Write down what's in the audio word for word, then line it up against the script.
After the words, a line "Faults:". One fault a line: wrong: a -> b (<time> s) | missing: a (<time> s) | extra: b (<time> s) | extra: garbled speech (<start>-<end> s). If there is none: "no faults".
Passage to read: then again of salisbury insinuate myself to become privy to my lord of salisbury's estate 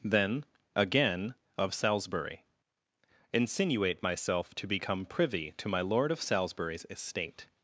then again of salisbury insinuate myself to become privy to my lord of salisbury's estate
Faults:
no faults